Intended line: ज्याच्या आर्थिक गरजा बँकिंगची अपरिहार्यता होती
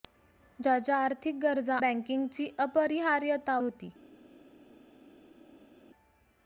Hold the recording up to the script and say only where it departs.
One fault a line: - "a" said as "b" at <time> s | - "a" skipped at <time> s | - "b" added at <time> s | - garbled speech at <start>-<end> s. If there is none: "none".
none